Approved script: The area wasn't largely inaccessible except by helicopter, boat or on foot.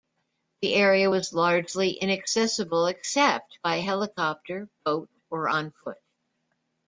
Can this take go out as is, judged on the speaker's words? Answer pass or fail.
fail